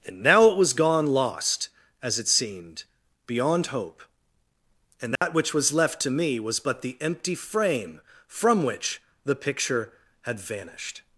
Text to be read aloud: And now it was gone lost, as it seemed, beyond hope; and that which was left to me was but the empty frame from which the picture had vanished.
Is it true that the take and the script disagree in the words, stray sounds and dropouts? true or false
true